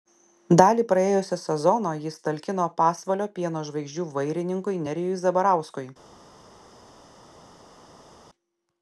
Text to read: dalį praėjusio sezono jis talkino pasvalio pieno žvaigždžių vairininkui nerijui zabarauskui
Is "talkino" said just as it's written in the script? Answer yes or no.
yes